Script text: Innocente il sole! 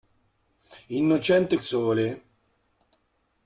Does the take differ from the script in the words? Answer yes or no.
no